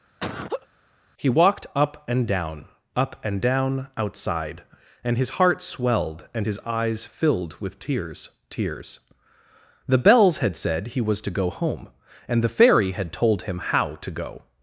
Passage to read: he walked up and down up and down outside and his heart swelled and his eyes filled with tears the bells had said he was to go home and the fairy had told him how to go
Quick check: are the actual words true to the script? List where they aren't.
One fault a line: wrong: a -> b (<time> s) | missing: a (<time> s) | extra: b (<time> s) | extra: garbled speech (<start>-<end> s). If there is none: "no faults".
extra: tears (8.5 s)